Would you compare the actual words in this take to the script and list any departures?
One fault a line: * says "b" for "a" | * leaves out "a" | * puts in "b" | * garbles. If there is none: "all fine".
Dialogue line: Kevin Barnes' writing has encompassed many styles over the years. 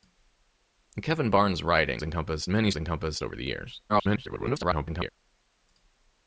* leaves out "has"
* says "encompassed" for "styles"
* garbles